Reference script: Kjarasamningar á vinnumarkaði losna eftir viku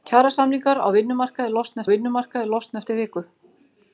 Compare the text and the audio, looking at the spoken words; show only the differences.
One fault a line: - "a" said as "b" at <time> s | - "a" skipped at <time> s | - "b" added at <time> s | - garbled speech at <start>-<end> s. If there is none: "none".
- "vinnumarkaði losna" added at 1.9 s